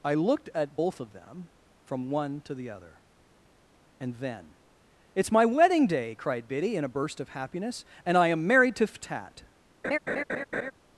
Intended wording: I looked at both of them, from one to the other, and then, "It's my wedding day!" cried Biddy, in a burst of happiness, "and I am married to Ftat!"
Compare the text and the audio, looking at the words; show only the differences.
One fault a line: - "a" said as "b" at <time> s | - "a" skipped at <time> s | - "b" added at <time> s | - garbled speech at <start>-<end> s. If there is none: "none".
none